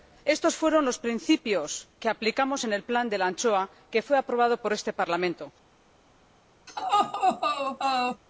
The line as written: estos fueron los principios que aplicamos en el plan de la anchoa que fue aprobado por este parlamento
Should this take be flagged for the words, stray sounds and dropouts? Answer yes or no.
yes